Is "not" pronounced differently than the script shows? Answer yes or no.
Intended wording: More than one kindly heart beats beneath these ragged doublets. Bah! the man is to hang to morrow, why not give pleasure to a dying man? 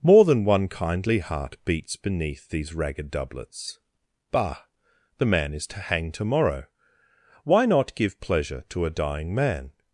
no